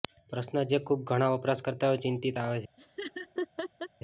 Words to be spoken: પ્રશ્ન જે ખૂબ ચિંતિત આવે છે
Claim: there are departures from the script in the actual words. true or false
true